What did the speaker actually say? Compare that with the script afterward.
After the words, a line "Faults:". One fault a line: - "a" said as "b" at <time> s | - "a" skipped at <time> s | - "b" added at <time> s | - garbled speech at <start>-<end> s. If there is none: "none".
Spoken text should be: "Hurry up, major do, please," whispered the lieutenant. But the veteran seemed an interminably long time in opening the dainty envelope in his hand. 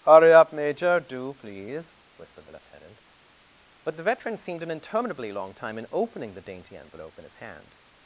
"Hurry up, major do, please," whispered the lieutenant. But the veteran seemed an interminably long time in opening the dainty envelope in his hand.
Faults:
none